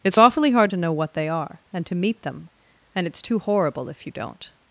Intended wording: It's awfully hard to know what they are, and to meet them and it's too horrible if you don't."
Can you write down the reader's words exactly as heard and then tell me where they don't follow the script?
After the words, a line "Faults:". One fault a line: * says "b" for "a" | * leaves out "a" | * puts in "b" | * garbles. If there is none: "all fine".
It's awfully hard to know what they are, and to meet them and it's too horrible if you don't."
Faults:
all fine